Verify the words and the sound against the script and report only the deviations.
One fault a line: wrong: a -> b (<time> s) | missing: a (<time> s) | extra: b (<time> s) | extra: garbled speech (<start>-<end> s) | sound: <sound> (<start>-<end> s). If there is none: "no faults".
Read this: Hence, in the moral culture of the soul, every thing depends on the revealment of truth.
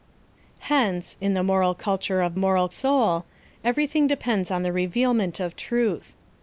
wrong: the -> moral (2.4 s)